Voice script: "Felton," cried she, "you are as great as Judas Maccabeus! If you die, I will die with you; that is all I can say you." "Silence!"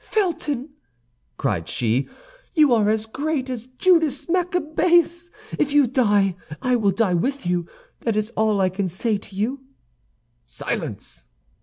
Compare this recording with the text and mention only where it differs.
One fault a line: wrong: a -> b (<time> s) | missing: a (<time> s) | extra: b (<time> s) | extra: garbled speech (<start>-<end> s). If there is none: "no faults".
extra: to (9.2 s)